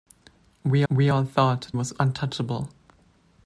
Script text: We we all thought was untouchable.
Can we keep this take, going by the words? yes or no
yes